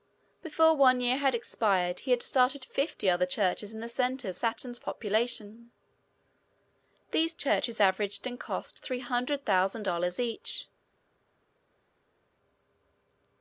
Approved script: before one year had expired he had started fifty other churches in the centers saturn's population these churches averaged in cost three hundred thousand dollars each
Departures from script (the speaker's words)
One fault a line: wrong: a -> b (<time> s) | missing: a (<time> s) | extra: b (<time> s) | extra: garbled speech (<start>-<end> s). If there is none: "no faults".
no faults